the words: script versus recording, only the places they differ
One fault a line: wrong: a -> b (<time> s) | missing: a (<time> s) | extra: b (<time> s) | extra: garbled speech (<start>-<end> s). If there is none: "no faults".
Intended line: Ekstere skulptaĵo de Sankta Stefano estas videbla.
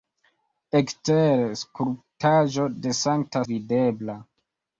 missing: Stefano estas (3.4 s)